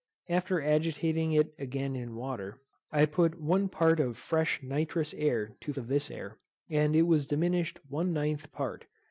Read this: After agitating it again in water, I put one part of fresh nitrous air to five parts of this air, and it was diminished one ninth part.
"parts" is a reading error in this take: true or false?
true